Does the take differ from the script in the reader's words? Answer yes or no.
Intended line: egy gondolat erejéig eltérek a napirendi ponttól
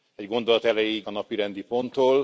yes